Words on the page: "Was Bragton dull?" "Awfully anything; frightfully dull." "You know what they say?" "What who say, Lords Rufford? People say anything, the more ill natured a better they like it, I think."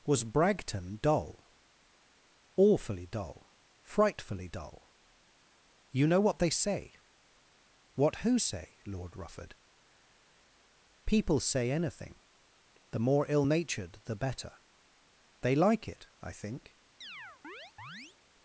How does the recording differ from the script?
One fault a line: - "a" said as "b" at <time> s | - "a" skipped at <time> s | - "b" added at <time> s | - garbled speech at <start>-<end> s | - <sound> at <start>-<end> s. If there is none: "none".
- "anything" said as "dull" at 3.0 s
- "Lords" said as "Lord" at 8.9 s
- "a" said as "the" at 14.0 s
- chirp at 17.0-18.2 s